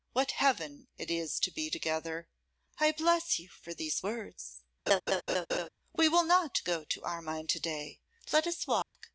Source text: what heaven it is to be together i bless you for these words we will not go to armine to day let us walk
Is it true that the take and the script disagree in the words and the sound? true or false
true